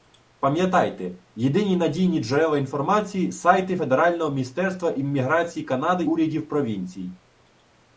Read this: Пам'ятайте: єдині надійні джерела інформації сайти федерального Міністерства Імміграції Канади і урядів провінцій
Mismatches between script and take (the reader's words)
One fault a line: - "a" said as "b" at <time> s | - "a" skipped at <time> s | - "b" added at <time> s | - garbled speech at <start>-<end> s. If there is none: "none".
- "і" skipped at 6.0 s